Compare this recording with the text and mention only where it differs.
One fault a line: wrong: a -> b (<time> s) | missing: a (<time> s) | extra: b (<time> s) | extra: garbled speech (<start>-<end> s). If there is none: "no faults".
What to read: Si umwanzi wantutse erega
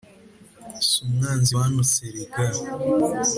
no faults